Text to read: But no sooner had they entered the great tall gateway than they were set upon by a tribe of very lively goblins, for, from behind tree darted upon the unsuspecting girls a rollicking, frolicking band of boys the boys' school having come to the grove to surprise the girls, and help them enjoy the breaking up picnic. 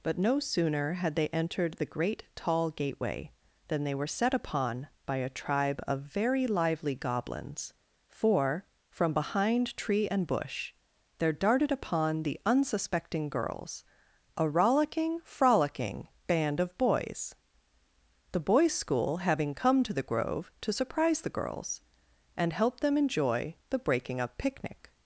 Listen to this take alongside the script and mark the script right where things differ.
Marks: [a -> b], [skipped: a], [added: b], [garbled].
But no sooner had they entered the great tall gateway than they were set upon by a tribe of very lively goblins, for, from behind tree [added: and bush there] darted upon the unsuspecting girls a rollicking, frolicking band of boys the boys' school having come to the grove to surprise the girls, and help them enjoy the breaking up picnic.